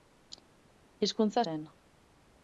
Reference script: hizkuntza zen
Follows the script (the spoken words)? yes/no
yes